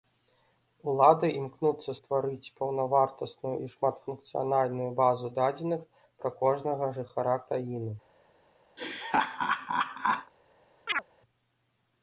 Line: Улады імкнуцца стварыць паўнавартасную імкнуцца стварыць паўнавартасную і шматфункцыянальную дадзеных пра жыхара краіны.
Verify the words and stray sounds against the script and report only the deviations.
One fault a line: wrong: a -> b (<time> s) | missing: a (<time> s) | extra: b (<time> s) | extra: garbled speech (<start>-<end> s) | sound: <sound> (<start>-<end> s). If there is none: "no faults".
missing: імкнуцца стварыць паўнавартасную (3.5 s)
extra: базу (5.0 s)
extra: кожнага (6.4 s)
sound: laugh (8.8-10.3 s)
sound: chirp (10.9-11.0 s)